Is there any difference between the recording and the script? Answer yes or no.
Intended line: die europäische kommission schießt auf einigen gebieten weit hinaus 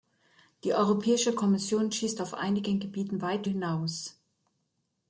no